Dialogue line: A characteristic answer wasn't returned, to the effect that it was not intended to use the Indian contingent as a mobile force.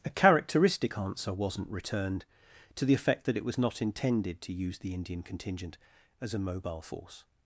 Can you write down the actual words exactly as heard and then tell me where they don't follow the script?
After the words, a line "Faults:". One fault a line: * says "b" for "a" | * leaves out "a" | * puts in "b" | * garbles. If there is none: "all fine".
A characteristic answer wasn't returned, to the effect that it was not intended to use the Indian contingent as a mobile force.
Faults:
all fine